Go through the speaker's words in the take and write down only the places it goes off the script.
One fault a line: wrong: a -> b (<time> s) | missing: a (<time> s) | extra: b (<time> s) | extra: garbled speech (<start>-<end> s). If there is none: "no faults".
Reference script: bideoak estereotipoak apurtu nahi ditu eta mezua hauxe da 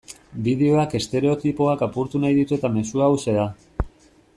no faults